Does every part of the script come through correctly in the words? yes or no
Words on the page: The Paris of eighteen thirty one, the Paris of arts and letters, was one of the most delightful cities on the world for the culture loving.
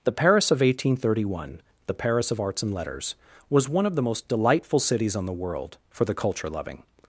yes